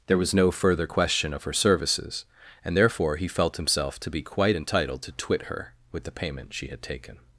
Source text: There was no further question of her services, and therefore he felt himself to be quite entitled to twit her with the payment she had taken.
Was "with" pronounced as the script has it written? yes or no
yes